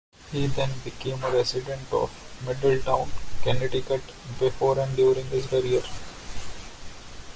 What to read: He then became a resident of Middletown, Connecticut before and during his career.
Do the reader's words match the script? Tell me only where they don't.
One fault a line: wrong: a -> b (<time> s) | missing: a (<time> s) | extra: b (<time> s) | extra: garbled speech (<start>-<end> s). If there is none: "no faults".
no faults